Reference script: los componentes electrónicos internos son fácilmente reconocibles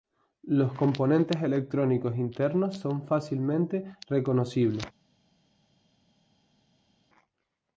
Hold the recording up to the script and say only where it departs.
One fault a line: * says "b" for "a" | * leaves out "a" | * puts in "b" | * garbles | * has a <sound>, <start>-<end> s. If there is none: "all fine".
all fine